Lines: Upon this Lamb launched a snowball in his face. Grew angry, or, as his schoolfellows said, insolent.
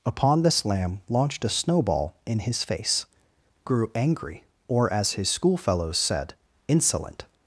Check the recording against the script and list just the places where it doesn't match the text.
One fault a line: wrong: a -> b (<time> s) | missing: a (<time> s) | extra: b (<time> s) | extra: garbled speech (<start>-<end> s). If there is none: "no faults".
no faults